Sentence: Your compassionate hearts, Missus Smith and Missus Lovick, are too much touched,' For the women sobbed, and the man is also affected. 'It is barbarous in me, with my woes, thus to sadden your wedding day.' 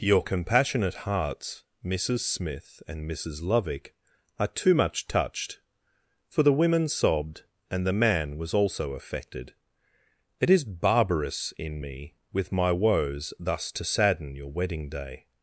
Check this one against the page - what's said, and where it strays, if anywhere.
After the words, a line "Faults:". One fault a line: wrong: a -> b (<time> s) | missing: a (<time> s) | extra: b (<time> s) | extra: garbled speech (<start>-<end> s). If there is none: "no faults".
Your compassionate hearts, Missus Smith and Missus Lovick, are too much touched,' For the women sobbed, and the man was also affected. 'It is barbarous in me, with my woes, thus to sadden your wedding day.'
Faults:
wrong: is -> was (8.4 s)